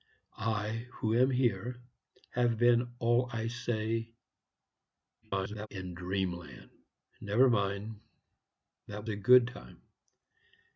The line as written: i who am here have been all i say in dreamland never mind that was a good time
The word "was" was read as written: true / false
false